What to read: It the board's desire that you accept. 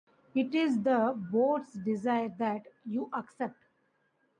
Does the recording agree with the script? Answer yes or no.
no